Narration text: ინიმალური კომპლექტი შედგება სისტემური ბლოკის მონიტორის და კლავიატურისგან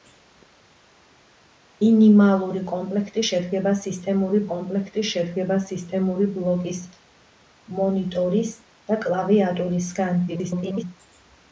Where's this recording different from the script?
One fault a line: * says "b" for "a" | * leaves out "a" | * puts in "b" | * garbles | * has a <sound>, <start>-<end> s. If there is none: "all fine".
* puts in "კომპლექტი შედგება სისტემური"
* garbles